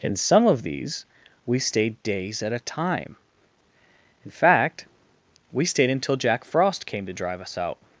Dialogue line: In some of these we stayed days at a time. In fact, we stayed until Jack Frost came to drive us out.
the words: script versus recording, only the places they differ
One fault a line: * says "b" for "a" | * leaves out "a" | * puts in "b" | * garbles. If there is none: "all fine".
all fine